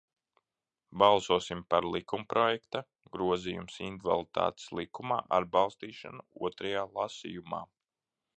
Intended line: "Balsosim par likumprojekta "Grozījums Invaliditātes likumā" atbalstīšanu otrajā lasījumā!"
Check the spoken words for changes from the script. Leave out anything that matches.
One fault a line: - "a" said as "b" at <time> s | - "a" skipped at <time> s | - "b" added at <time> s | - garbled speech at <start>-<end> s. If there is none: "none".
none